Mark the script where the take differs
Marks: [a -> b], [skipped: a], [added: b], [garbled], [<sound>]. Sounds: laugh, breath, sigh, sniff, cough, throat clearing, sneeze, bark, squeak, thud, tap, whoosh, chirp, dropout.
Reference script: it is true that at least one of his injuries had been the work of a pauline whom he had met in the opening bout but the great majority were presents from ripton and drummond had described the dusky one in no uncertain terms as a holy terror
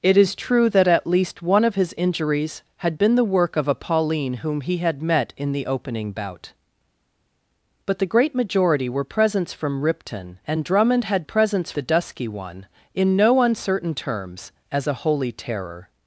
it is true that at least one of his injuries had been the work of a pauline whom he had met in the opening bout but the great majority were presents from ripton and drummond had [described -> presents] the dusky one in no uncertain terms as a holy terror